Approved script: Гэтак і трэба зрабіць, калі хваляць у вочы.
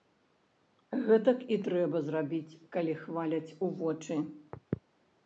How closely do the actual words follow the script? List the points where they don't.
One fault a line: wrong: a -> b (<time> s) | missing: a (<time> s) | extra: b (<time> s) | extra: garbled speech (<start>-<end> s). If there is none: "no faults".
no faults